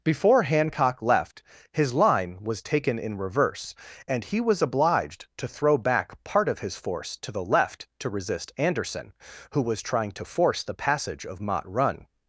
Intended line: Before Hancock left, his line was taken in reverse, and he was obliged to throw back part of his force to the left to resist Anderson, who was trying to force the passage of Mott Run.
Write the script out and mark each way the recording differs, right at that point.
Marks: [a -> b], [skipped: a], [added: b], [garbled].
Before Hancock left, his line was taken in reverse, and he was obliged to throw back part of his force to the left to resist Anderson, who was trying to force the passage of Mott Run.